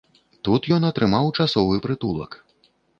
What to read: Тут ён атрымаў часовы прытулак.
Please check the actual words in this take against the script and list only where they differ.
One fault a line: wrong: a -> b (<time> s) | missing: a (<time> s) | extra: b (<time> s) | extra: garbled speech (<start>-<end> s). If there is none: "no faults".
no faults